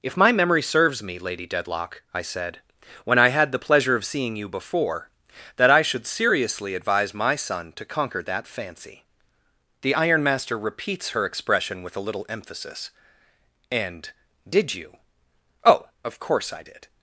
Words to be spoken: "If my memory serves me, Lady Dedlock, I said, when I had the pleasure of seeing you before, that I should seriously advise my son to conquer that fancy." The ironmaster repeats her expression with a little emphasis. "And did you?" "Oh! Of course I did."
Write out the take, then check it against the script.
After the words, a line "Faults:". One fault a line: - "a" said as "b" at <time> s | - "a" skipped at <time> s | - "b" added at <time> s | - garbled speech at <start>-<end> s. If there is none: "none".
"If my memory serves me, Lady Dedlock, I said, when I had the pleasure of seeing you before, that I should seriously advise my son to conquer that fancy." The ironmaster repeats her expression with a little emphasis. "And did you?" "Oh! Of course I did."
Faults:
none